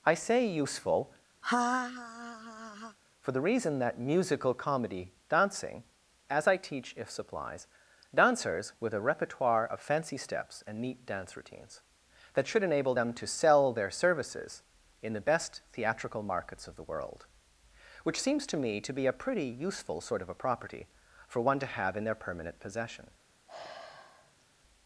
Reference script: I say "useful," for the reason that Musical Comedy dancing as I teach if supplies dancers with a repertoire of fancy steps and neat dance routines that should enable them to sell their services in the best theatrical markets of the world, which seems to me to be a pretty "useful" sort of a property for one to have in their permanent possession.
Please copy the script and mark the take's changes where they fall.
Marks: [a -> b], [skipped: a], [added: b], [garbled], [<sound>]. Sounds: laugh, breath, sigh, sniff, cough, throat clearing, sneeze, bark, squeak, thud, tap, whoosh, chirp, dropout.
I say "useful," [laugh] for the reason that Musical Comedy dancing as I teach if supplies dancers with a repertoire of fancy steps and neat dance routines that should enable them to sell their services in the best theatrical markets of the world, which seems to me to be a pretty "useful" sort of a property for one to have in their permanent possession. [sigh]